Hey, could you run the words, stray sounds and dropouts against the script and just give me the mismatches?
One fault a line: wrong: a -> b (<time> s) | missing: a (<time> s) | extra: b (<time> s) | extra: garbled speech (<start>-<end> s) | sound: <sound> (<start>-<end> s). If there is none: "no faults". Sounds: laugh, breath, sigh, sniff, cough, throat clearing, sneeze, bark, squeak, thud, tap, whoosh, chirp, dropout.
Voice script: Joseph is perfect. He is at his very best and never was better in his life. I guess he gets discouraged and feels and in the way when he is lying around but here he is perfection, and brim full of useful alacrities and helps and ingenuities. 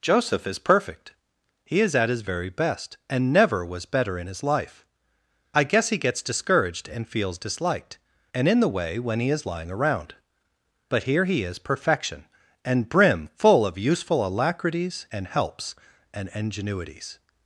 extra: disliked (7.4 s)